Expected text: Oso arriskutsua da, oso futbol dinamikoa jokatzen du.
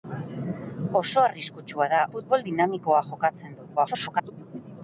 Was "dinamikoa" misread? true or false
false